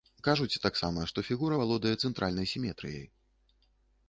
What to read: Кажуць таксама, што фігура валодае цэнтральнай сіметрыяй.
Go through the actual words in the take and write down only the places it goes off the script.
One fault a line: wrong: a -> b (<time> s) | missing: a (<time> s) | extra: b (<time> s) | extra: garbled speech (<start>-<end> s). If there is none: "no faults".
no faults